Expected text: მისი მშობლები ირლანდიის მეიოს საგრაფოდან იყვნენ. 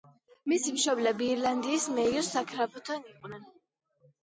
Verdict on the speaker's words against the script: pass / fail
pass